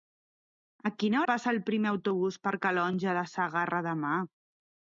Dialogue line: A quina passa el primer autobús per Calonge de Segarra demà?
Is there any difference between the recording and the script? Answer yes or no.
no